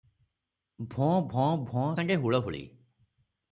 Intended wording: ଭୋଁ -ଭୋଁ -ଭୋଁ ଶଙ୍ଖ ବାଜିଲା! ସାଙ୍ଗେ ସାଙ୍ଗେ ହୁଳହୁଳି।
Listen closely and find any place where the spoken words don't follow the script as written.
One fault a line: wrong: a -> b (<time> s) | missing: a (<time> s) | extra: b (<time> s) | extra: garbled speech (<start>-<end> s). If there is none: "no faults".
missing: ଶଙ୍ଖ ବାଜିଲା ସାଙ୍ଗେ (1.8 s)